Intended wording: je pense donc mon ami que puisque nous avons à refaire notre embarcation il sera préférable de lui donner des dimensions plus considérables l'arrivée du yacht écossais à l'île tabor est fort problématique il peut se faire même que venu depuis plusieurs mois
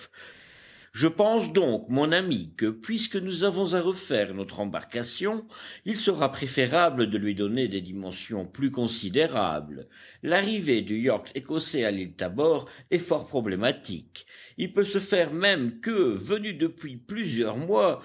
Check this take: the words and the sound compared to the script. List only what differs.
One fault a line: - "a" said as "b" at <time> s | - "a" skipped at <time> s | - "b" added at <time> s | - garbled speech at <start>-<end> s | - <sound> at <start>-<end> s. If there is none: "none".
none